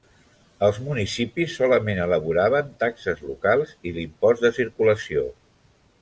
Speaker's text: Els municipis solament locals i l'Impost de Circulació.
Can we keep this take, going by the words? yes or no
no